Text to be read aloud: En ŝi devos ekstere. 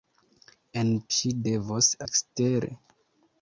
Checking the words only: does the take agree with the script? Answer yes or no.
yes